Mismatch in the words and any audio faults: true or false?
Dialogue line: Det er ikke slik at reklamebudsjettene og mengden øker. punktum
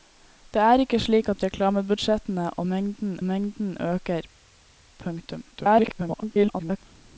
true